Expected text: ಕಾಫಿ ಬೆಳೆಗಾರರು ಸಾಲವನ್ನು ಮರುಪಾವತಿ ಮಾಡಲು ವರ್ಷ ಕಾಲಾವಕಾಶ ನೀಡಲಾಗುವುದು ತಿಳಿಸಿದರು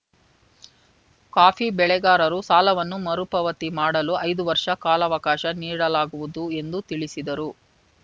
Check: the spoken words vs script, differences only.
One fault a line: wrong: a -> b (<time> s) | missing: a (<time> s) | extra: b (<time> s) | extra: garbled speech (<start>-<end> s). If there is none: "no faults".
extra: ಐದು (4.2 s)
extra: ಎಂದು (6.6 s)